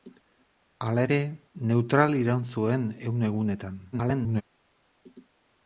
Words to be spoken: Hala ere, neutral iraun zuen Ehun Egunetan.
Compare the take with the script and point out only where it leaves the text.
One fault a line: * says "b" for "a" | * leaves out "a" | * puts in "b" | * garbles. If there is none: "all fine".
* garbles